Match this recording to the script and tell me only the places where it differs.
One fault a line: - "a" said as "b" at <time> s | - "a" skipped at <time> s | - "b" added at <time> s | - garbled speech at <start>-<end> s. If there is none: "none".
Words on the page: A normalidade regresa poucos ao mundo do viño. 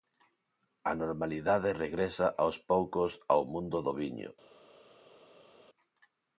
- "aos" added at 2.4 s